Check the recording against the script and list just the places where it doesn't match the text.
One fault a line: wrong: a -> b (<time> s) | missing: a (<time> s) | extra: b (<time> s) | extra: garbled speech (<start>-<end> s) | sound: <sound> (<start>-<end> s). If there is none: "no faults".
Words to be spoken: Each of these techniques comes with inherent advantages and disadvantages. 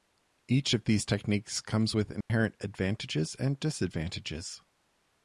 sound: dropout (2.2-2.3 s)